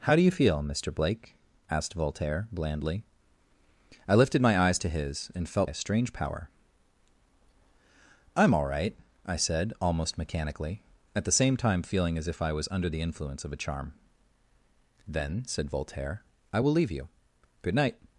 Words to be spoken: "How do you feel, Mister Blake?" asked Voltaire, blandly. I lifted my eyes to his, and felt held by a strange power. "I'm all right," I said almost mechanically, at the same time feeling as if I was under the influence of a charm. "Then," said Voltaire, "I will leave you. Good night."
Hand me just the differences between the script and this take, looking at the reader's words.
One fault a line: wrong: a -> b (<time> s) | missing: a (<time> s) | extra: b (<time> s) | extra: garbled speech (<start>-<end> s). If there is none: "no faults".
missing: held by (5.7 s)